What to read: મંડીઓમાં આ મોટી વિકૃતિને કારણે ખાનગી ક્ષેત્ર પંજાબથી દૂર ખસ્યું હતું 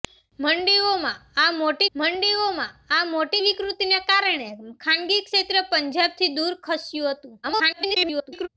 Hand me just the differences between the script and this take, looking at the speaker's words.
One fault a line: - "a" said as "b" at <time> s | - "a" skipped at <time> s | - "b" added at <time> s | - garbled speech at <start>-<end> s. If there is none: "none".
- "મંડીઓમાં આ મોટી" added at 1.9 s
- garbled speech at 7.4-8.5 s